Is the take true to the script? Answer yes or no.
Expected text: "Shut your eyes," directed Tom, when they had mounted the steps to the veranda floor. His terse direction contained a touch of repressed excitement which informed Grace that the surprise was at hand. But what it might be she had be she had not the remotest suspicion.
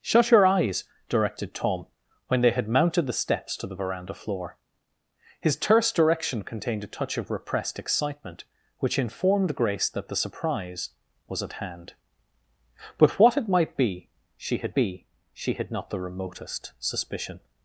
yes